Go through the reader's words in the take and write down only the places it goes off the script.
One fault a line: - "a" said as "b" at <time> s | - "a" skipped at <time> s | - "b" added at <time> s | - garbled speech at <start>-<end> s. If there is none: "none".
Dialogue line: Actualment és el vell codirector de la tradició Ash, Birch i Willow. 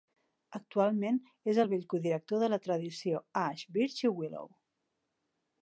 none